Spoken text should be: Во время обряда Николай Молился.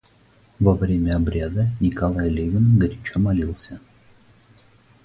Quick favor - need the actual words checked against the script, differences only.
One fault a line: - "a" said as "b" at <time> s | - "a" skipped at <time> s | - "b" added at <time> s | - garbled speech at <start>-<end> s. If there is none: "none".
- "Левин горячо" added at 2.3 s